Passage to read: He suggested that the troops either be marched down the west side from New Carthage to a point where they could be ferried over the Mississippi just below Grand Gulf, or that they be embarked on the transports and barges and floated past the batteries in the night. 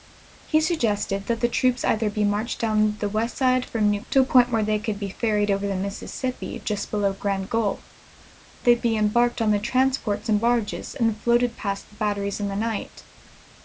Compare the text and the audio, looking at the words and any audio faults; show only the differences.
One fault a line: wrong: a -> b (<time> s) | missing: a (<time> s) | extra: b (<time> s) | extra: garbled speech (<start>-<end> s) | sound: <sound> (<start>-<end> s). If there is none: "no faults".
missing: Carthage (4.0 s)
missing: or that (7.8 s)